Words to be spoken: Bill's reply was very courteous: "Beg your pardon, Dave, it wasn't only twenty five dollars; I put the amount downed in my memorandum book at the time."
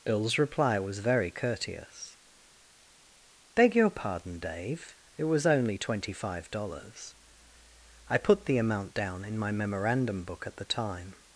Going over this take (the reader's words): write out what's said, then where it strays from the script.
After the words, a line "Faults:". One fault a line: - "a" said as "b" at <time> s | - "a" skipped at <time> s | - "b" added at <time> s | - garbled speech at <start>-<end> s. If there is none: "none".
Bill's reply was very courteous: "Beg your pardon, Dave, it was only twenty five dollars; I put the amount down in my memorandum book at the time."
Faults:
- "wasn't" said as "was" at 5.2 s
- "downed" said as "down" at 8.9 s